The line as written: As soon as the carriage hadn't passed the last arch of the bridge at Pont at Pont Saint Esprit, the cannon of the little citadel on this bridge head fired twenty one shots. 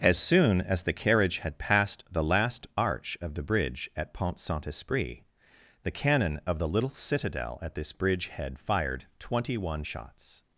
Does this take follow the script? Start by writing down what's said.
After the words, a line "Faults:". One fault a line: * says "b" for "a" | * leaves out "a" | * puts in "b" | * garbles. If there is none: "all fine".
As soon as the carriage had passed the last arch of the bridge at Pont Saint Esprit, the cannon of the little citadel at this bridge head fired twenty one shots.
Faults:
* says "had" for "hadn't"
* leaves out "at Pont"
* says "at" for "on"